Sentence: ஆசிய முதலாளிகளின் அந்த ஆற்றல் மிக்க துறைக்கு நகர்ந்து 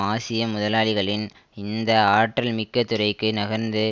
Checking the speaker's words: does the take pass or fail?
fail